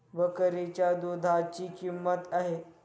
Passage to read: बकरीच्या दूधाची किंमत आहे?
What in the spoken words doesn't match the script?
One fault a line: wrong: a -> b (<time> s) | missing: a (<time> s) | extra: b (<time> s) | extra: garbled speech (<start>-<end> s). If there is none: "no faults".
no faults